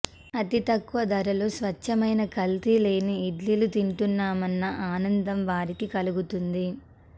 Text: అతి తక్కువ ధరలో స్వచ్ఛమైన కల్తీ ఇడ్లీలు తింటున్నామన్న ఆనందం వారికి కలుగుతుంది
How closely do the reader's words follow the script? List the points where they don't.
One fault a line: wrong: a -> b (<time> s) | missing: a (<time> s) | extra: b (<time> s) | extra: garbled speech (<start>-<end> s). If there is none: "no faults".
extra: లేని (2.8 s)